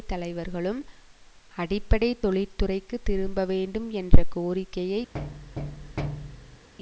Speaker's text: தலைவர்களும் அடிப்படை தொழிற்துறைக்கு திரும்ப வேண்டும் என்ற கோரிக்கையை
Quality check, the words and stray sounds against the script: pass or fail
fail